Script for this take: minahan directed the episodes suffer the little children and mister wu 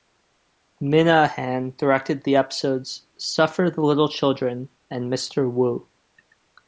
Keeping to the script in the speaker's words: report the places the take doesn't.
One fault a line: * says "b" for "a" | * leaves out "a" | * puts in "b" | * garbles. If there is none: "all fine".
all fine